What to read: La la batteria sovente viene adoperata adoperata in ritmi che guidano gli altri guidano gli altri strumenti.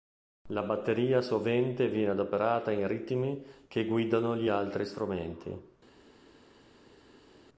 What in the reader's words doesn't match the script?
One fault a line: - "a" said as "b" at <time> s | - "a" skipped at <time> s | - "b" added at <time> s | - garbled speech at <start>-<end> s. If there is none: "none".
- "la" skipped at 0.6 s
- "adoperata" skipped at 2.7 s
- "guidano gli altri" skipped at 4.8 s